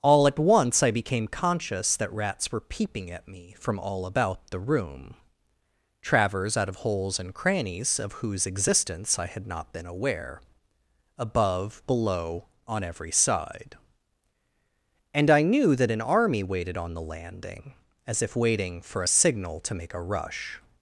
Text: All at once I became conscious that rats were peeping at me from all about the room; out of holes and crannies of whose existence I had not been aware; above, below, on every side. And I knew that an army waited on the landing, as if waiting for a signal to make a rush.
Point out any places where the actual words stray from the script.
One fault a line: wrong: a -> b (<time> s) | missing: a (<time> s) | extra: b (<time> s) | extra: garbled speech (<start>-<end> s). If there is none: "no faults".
extra: travers (6.0 s)